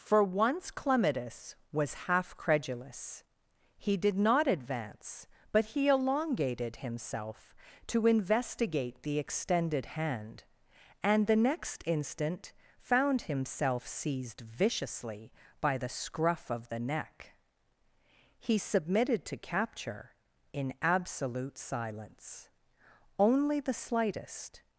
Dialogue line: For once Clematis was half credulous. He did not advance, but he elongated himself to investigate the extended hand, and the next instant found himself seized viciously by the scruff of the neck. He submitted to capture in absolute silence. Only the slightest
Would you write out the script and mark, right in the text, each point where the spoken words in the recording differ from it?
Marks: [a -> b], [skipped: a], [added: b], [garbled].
For once Clematis was half credulous. He did not advance, but he elongated himself to investigate the extended hand, and the next instant found himself seized viciously by the scruff of the neck. He submitted to capture in absolute silence. Only the slightest